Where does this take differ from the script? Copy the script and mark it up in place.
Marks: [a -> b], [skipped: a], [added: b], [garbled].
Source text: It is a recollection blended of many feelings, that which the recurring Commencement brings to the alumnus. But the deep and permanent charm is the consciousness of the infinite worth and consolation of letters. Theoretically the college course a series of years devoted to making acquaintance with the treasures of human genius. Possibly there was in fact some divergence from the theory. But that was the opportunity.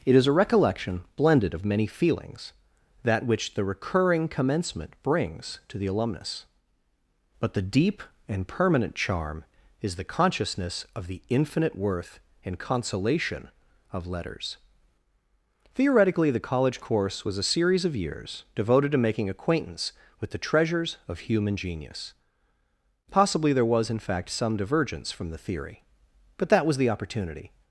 It is a recollection blended of many feelings, that which the recurring Commencement brings to the alumnus. But the deep and permanent charm is the consciousness of the infinite worth and consolation of letters. Theoretically the college course [added: was] a series of years devoted to making acquaintance with the treasures of human genius. Possibly there was in fact some divergence from the theory. But that was the opportunity.